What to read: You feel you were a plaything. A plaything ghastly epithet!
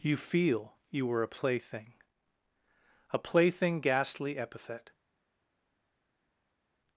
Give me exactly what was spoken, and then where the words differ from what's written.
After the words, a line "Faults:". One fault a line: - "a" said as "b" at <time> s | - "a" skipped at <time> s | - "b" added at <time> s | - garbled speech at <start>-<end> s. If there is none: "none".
You feel you were a plaything. A plaything ghastly epithet!
Faults:
none